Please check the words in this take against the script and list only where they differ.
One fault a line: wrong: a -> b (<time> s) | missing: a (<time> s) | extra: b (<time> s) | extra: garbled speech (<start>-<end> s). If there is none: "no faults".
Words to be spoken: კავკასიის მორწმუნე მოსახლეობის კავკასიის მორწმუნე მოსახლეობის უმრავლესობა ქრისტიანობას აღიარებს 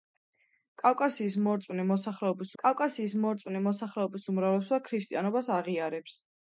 no faults